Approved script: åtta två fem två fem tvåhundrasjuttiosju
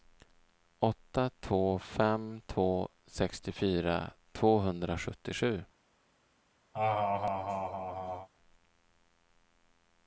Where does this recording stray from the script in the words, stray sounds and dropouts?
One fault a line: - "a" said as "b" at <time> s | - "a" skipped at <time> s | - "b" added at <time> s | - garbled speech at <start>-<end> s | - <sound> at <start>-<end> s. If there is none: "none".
- "fem" said as "sextiofyra" at 3.1 s
- laugh at 6.7-8.3 s